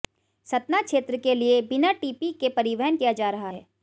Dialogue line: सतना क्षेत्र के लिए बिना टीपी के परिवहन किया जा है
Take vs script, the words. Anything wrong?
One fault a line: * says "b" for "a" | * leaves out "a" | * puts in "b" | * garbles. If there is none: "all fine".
* puts in "रहा"